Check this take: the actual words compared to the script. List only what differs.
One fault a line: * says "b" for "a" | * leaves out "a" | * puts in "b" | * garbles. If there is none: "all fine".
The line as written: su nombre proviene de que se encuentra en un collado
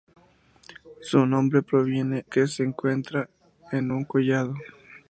* leaves out "de"